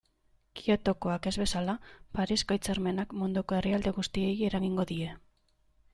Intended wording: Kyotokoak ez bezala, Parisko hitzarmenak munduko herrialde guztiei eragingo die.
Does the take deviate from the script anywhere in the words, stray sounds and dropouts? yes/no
no